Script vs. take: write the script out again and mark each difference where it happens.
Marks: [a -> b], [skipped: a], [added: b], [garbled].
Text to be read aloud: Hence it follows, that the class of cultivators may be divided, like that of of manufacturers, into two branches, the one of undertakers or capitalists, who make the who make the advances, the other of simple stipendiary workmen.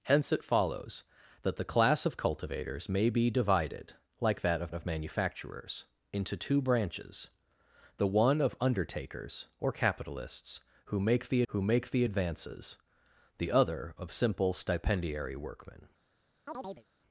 Hence it follows, that the class of cultivators may be divided, like that of of manufacturers, into two branches, the one of undertakers or capitalists, who make the who make the advances, the other of simple stipendiary workmen.